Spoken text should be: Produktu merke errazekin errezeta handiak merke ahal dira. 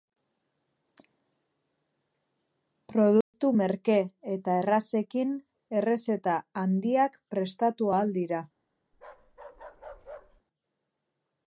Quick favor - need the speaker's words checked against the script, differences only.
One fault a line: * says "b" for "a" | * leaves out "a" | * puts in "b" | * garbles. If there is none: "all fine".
* puts in "eta"
* says "prestatu" for "merke"